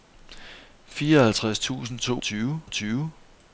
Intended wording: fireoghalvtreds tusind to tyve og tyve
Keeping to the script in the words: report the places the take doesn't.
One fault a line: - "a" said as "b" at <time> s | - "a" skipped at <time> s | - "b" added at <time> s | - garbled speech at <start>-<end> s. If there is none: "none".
none